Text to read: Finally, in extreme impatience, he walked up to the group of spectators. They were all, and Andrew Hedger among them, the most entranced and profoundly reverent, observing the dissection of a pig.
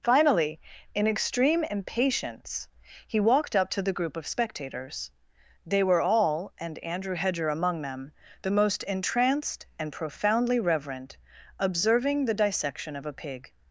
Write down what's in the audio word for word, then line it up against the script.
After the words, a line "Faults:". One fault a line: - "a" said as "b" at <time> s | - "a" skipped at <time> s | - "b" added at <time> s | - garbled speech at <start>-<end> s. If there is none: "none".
Finally, in extreme impatience, he walked up to the group of spectators. They were all, and Andrew Hedger among them, the most entranced and profoundly reverent, observing the dissection of a pig.
Faults:
none